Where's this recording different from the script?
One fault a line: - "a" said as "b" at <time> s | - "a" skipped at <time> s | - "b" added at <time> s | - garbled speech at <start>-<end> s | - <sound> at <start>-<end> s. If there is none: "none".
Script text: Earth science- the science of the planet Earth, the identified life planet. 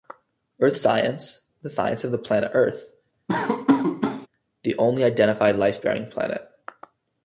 - laugh at 3.3-4.3 s
- "only" added at 4.8 s
- "bearing" added at 5.8 s